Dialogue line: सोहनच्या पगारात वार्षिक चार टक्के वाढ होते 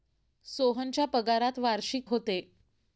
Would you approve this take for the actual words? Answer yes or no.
no